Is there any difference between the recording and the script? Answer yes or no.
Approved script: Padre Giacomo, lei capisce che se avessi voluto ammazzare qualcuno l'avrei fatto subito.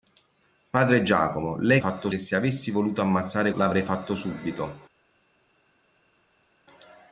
yes